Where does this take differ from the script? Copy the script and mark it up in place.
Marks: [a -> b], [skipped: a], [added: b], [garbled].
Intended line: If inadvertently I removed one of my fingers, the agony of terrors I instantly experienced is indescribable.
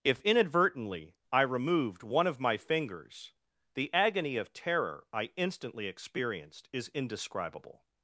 If inadvertently I removed one of my fingers, the agony of [terrors -> terror] I instantly experienced is indescribable.